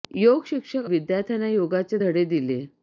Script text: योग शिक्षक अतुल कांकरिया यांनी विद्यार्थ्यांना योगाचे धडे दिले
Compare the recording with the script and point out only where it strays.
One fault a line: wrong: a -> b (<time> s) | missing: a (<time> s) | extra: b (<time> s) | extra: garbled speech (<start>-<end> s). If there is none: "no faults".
missing: अतुल कांकरिया यांनी (0.8 s)